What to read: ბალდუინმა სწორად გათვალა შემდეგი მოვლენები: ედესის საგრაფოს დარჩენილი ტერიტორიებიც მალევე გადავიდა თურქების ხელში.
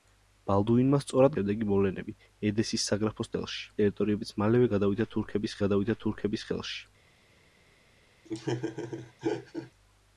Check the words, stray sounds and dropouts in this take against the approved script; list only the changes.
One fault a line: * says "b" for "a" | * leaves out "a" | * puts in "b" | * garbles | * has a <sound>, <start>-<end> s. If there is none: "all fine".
* leaves out "გათვალა"
* says "ხელში" for "დარჩენილი"
* puts in "გადავიდა თურქების"
* has a laugh, 8.2-9.7 s